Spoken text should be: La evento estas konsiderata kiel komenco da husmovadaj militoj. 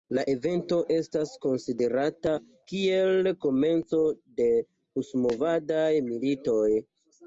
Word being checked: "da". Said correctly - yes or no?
no